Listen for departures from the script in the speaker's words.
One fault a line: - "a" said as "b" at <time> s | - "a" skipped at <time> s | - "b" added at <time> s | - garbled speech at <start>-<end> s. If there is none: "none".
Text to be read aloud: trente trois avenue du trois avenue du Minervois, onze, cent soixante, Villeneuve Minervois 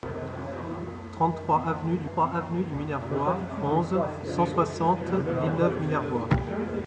none